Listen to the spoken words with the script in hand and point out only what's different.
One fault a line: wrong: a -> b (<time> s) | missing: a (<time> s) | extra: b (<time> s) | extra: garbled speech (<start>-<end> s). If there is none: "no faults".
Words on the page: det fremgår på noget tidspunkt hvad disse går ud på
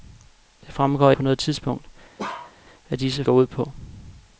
no faults